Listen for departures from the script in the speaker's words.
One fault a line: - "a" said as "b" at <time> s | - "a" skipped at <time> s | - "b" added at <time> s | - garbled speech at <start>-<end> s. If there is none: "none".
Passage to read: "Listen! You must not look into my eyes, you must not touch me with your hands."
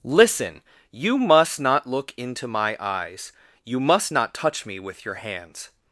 none